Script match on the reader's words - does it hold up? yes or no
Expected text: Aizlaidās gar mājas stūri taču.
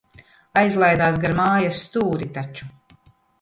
yes